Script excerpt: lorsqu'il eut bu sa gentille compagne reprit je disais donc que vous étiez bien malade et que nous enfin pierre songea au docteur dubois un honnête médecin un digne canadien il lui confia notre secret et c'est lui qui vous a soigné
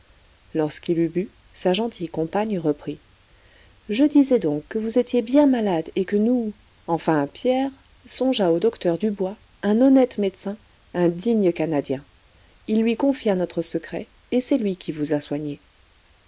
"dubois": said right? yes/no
yes